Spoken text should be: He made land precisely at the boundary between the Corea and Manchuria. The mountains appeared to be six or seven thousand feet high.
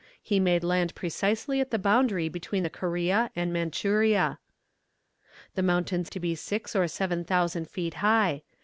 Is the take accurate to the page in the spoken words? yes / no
no